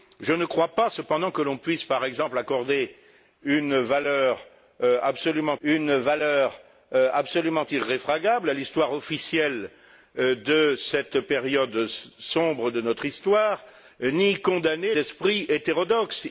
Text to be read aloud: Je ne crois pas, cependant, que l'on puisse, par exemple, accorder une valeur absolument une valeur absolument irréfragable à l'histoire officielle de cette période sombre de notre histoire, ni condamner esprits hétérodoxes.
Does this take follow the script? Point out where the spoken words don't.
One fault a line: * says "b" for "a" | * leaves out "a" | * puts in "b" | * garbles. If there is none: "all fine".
all fine